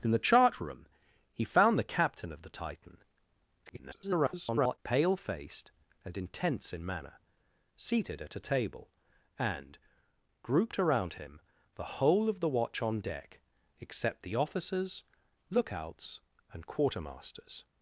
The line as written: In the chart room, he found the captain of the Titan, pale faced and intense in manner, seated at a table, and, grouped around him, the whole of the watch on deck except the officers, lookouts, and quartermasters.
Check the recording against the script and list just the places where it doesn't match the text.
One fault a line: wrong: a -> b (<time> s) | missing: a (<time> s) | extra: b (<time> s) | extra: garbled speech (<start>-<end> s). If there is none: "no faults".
extra: garbled speech (3.7-4.8 s)